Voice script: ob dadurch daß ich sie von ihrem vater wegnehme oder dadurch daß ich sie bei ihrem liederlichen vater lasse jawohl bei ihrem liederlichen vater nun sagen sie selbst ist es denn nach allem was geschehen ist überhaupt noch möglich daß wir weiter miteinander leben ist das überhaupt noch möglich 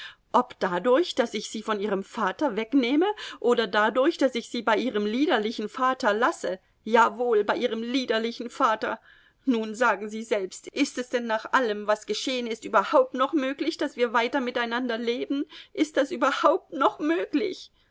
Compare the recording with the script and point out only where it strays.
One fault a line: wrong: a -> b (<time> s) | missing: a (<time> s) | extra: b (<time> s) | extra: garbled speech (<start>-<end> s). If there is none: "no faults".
no faults